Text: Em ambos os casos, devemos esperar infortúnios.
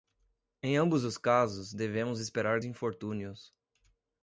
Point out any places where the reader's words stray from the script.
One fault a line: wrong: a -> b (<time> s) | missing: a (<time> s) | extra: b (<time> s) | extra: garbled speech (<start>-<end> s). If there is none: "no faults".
no faults